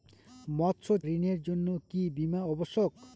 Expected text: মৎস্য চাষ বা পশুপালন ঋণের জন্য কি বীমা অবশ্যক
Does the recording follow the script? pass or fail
fail